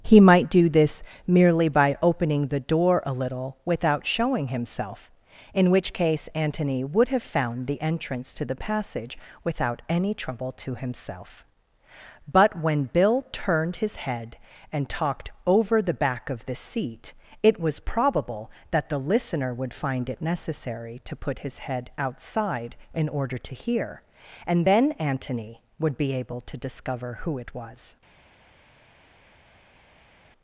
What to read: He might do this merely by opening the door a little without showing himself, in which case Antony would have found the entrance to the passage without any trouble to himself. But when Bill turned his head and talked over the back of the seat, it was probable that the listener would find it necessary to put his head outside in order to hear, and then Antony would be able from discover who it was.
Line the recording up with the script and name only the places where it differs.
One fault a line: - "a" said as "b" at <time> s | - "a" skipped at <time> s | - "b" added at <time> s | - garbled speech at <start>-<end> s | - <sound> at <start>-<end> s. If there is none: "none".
- "from" said as "to" at 26.4 s